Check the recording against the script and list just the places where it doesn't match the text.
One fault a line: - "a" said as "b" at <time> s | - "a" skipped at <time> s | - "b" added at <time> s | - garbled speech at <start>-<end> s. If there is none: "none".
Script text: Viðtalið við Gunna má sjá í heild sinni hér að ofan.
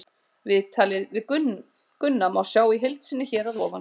none